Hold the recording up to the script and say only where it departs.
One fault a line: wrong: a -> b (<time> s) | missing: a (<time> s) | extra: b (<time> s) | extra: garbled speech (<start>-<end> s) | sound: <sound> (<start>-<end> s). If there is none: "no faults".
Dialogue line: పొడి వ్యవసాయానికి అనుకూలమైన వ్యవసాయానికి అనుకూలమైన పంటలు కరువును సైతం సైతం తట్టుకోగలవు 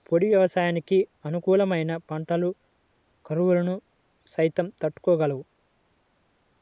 missing: వ్యవసాయానికి అనుకూలమైన (1.9 s)
missing: సైతం (4.7 s)